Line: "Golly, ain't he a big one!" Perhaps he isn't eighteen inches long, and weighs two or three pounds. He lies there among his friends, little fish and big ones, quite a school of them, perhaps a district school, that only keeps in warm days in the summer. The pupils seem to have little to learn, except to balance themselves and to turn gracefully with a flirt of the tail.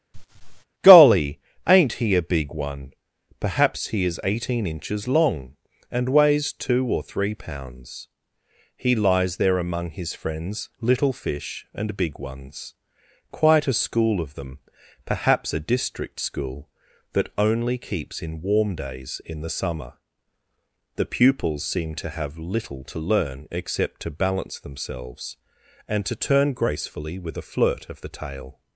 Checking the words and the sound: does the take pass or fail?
fail